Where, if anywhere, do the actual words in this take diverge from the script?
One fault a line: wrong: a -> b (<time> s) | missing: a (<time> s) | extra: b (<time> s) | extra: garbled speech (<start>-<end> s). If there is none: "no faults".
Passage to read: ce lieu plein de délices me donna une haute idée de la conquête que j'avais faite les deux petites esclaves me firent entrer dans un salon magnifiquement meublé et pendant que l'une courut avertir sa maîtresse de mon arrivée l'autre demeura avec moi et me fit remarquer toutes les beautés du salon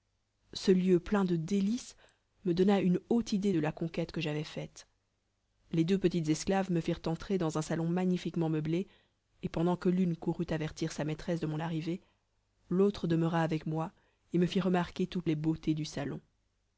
no faults